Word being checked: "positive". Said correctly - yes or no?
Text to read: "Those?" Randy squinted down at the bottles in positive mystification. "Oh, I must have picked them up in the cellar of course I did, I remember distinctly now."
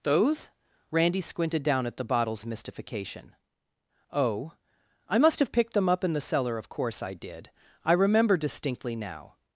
no